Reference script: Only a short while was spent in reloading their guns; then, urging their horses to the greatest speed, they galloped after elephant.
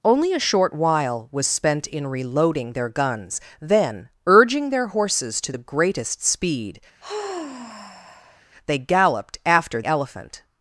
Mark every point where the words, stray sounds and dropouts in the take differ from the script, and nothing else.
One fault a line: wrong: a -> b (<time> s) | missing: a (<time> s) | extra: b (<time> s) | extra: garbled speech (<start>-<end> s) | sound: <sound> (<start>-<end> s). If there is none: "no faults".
sound: sigh (7.0-8.4 s)